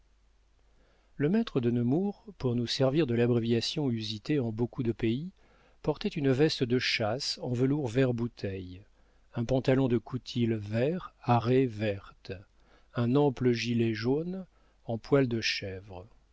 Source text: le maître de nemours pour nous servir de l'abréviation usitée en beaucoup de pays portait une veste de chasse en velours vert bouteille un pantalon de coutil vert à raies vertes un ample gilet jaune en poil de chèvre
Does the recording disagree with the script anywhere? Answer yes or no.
no